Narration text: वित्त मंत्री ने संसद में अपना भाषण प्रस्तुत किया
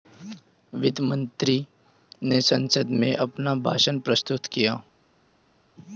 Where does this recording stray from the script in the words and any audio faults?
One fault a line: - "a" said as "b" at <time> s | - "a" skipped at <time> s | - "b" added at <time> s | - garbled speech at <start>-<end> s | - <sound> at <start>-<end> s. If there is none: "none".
none